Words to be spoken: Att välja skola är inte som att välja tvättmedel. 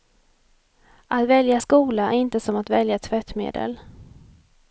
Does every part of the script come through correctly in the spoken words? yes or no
yes